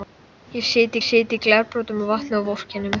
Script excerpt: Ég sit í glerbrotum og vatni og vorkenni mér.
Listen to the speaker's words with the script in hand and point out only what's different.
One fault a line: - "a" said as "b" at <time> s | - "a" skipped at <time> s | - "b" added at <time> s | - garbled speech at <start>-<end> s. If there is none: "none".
- "sit" added at 1.1 s